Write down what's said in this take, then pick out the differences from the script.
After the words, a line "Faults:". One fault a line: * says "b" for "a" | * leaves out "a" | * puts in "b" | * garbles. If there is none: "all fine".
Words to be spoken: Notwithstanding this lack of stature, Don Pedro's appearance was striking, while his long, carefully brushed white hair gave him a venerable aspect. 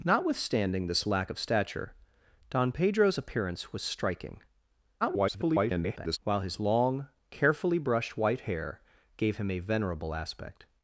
Notwithstanding this lack of stature, Don Pedro's appearance was striking, [garbled] while his long, carefully brushed white hair gave him a venerable aspect.
Faults:
* garbles